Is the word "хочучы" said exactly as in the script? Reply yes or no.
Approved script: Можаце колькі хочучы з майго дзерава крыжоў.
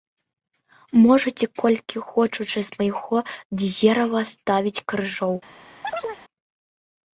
yes